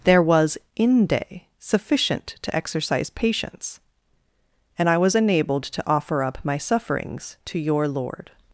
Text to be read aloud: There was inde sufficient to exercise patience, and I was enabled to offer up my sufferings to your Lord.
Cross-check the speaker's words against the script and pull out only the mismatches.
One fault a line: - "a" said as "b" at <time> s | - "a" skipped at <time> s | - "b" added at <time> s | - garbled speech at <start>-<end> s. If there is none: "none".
none